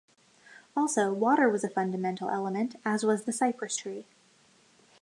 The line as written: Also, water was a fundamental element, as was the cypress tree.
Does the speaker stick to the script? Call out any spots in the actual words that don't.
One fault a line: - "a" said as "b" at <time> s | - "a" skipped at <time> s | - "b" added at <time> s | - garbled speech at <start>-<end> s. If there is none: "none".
none